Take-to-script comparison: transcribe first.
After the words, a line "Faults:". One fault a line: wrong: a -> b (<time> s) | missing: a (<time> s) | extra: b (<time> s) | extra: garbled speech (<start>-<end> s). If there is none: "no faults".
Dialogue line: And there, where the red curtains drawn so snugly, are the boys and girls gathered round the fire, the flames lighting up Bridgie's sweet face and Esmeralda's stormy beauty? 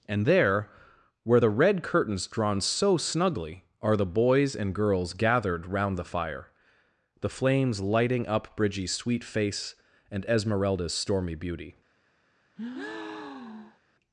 And there, where the red curtains drawn so snugly, are the boys and girls gathered round the fire, the flames lighting up Bridgie's sweet face and Esmeralda's stormy beauty?
Faults:
no faults